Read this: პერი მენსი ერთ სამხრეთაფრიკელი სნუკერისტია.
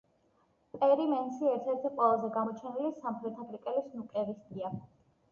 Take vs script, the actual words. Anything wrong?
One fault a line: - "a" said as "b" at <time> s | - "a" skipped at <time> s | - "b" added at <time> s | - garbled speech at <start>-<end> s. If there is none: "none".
- "ერთი ყველაზე გამოჩენილი" added at 1.7 s